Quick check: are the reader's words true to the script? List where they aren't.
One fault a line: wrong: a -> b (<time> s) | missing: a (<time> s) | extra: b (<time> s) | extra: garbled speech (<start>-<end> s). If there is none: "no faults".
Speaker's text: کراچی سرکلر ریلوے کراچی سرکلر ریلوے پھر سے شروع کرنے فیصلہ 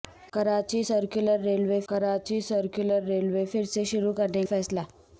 no faults